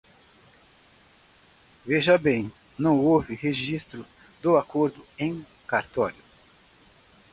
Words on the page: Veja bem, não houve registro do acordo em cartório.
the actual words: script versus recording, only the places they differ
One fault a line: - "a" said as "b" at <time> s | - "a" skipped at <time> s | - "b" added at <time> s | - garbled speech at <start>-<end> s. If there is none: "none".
none